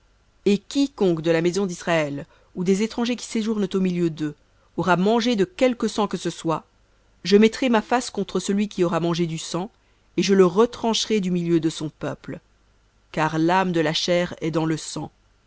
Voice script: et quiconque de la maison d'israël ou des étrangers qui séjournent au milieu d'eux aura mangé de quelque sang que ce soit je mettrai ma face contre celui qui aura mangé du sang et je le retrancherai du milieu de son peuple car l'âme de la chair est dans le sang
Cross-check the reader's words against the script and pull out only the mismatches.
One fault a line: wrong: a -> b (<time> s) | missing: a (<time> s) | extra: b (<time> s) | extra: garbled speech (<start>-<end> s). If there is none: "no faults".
no faults